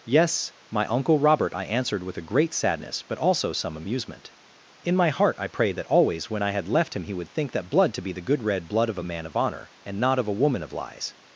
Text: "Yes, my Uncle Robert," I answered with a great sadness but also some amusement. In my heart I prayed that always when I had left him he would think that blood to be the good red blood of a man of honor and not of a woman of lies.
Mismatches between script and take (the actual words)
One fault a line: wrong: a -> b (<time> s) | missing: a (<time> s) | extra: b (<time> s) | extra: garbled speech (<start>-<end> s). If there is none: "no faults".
no faults